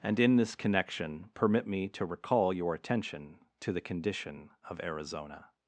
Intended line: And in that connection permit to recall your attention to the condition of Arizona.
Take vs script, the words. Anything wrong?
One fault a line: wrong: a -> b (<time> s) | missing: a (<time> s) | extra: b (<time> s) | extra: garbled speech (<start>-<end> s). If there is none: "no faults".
wrong: that -> this (0.3 s)
extra: me (1.7 s)